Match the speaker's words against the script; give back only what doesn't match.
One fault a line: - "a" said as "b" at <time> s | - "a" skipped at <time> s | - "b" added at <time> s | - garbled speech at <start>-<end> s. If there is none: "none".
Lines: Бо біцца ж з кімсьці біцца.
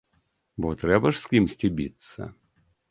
- "біцца" said as "трэба" at 0.8 s